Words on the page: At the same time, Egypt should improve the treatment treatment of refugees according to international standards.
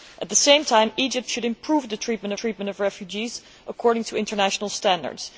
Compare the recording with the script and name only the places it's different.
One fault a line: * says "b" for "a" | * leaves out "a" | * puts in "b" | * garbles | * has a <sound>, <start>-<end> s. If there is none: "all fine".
all fine